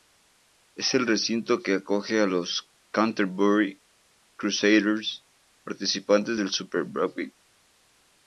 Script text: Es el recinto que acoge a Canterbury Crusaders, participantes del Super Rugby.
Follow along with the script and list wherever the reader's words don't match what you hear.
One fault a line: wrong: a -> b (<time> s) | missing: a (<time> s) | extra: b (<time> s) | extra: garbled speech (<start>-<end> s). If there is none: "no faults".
extra: los (2.2 s)